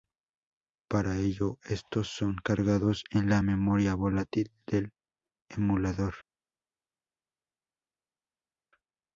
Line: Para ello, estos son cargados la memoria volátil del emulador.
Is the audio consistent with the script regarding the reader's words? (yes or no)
no